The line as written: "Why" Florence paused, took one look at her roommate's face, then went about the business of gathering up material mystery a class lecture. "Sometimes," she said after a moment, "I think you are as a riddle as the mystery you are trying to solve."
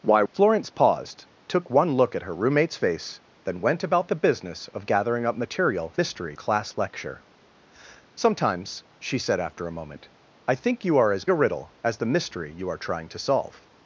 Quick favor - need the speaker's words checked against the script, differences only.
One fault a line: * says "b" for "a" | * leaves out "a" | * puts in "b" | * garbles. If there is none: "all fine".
all fine